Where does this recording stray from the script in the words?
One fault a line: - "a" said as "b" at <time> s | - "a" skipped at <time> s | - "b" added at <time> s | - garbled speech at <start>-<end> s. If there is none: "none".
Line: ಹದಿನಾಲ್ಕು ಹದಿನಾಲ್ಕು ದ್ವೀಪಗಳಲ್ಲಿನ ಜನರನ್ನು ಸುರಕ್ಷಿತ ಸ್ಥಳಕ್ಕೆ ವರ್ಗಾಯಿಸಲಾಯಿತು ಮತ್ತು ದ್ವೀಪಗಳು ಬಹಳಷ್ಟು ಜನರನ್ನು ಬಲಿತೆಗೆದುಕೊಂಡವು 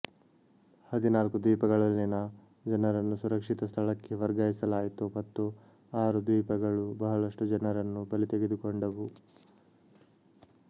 - "ಹದಿನಾಲ್ಕು" skipped at 1.4 s
- "ಆರು" added at 6.0 s